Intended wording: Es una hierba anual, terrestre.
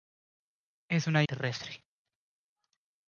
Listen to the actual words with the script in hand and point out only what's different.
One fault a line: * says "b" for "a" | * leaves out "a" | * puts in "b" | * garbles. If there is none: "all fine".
* leaves out "hierba anual"